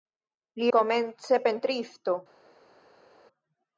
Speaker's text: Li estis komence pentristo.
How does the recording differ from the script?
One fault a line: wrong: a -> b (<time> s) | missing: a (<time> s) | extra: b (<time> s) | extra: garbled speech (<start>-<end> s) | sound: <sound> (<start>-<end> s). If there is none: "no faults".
missing: estis (0.7 s)